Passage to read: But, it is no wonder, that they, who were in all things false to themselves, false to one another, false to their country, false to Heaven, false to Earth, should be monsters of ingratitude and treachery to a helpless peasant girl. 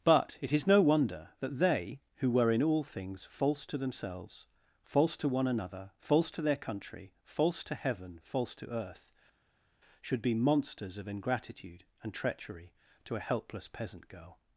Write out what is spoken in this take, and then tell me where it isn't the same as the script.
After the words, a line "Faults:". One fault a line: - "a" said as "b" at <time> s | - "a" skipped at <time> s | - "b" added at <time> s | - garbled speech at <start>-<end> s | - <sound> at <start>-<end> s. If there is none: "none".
But, it is no wonder, that they, who were in all things false to themselves, false to one another, false to their country, false to Heaven, false to Earth, should be monsters of ingratitude and treachery to a helpless peasant girl.
Faults:
none